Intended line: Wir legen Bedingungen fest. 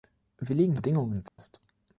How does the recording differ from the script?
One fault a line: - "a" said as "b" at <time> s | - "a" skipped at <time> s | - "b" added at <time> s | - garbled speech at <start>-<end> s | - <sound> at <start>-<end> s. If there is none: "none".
- dropout at 1.3-1.4 s